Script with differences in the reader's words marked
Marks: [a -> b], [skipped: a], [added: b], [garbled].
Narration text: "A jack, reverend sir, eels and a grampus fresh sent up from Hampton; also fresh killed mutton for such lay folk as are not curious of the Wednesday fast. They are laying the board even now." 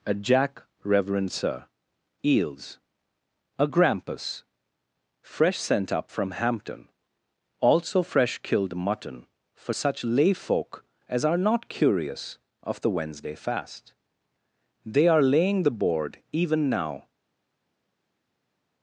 "A jack, reverend sir, eels [skipped: and] a grampus fresh sent up from Hampton; also fresh killed mutton for such lay folk as are not curious of the Wednesday fast. They are laying the board even now."